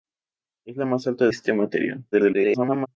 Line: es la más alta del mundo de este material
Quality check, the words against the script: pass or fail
fail